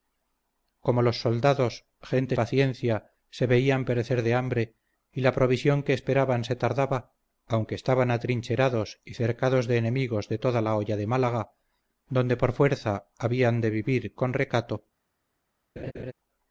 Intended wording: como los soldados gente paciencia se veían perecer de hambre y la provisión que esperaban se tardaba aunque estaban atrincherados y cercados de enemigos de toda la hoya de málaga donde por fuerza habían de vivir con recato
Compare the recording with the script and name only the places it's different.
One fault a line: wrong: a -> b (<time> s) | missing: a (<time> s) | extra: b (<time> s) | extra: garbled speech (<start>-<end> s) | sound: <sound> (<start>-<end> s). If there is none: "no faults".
sound: laugh (15.8-16.1 s)